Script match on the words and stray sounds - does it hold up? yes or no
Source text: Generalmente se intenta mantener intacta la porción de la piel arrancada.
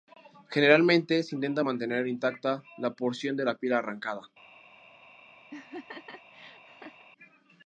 no